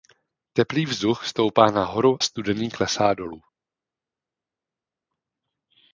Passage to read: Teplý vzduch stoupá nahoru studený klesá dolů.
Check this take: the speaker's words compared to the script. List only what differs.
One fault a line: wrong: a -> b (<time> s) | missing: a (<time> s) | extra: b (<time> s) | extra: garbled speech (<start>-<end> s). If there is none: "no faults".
no faults